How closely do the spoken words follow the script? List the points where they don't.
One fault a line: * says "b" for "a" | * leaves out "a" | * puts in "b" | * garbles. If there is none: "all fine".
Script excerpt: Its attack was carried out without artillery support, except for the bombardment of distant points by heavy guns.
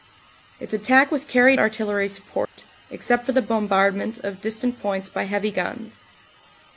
* leaves out "out without"